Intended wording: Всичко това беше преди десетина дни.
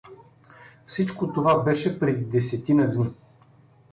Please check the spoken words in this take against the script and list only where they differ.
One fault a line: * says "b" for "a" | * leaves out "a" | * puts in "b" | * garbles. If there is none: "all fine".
all fine